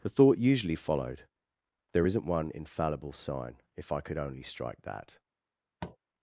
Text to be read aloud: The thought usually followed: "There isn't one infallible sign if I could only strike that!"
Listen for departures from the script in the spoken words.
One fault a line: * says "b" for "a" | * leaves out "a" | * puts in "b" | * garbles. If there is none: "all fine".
all fine